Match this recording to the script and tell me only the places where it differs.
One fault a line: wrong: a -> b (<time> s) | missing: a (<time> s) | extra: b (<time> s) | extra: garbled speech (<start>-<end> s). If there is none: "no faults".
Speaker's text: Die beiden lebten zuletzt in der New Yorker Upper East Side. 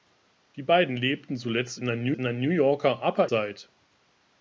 extra: in der New (2.1 s)
missing: East (3.3 s)